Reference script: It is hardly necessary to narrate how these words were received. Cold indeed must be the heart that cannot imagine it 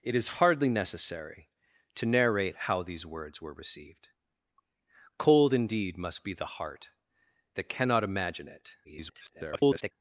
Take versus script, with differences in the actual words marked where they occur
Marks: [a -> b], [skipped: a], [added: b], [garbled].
It is hardly necessary to narrate how these words were received. Cold indeed must be the heart that cannot imagine it [garbled]